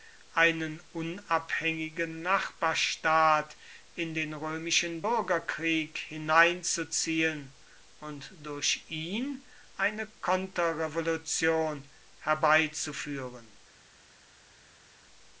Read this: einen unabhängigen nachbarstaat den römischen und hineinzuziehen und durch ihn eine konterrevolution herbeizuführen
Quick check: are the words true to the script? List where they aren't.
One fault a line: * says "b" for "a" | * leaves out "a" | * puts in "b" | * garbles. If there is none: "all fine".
* puts in "in"
* says "bürgerkrieg" for "und"